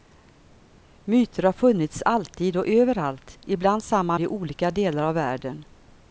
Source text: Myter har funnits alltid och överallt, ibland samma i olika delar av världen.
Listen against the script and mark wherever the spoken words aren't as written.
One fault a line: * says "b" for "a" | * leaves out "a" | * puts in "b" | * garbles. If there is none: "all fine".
all fine